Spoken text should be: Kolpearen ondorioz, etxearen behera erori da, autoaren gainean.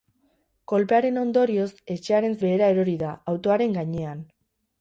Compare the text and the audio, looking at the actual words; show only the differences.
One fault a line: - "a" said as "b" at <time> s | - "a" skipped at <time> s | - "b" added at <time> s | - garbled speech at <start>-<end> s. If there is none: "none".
none